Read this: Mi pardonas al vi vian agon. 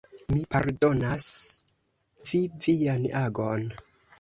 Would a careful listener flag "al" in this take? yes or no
yes